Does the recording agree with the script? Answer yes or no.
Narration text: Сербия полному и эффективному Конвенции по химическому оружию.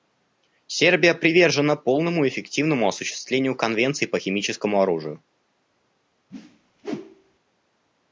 no